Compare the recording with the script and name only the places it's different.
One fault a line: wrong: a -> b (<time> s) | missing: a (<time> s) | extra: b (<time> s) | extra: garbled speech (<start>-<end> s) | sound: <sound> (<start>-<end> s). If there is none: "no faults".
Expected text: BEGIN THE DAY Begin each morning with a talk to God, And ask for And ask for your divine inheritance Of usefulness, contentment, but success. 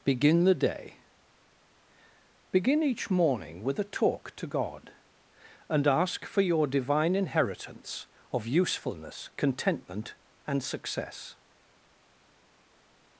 missing: And ask for (6.4 s)
wrong: but -> and (10.5 s)